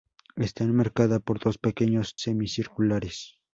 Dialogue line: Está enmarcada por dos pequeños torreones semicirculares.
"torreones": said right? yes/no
no